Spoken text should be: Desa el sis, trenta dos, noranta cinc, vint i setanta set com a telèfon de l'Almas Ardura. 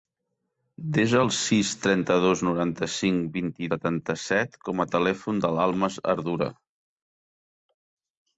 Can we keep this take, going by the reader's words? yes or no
yes